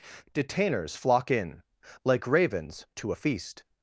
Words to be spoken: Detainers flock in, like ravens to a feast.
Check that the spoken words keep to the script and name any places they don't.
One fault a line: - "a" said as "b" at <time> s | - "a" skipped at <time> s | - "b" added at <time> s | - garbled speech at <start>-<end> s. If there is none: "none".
none